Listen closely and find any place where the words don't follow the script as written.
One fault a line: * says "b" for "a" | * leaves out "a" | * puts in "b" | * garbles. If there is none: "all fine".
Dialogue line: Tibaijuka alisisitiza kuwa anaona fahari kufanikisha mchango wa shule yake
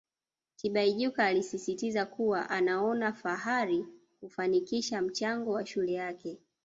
all fine